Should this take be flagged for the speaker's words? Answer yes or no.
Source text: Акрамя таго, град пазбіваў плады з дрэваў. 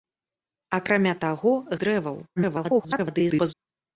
yes